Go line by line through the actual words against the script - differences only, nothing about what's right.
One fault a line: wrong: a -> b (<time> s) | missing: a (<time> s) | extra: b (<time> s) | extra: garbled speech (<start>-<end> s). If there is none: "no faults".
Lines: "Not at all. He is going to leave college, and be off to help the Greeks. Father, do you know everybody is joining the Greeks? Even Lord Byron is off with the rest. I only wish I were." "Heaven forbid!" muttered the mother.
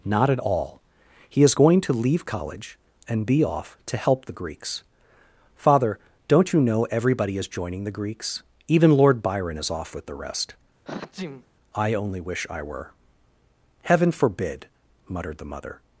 wrong: do -> don't (6.3 s)